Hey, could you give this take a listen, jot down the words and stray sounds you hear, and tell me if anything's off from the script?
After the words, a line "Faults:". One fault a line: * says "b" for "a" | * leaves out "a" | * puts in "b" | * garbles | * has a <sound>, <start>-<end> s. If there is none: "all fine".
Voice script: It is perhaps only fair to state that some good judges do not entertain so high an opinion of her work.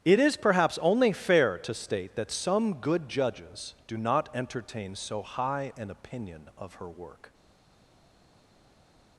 It is perhaps only fair to state that some good judges do not entertain so high an opinion of her work.
Faults:
all fine